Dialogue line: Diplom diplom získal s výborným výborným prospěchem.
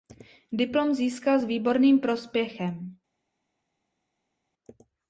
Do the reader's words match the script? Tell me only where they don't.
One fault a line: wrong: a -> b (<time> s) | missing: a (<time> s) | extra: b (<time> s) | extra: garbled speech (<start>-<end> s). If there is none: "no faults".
missing: diplom (0.9 s)
missing: výborným (2.0 s)